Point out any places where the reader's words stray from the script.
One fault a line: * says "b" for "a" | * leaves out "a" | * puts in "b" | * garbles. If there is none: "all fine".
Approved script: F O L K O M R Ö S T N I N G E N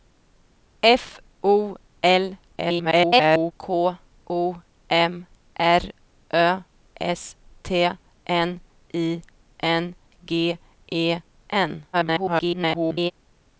* garbles
* garbles